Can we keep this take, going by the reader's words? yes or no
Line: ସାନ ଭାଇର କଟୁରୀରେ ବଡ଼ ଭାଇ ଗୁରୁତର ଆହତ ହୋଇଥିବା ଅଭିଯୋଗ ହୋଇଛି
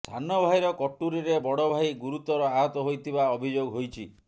yes